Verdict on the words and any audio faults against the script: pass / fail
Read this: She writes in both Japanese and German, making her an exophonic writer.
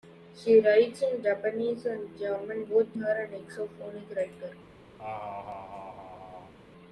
fail